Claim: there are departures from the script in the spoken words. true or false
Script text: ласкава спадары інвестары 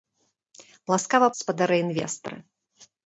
false